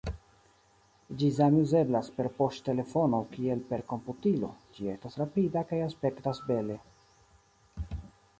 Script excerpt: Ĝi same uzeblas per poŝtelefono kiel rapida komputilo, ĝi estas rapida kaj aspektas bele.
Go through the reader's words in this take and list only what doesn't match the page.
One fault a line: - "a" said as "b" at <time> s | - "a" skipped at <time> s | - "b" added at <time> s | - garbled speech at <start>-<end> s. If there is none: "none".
- "rapida" said as "per" at 3.7 s